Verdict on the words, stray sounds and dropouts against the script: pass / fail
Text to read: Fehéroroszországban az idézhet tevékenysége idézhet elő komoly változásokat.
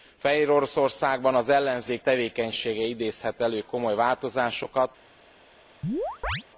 fail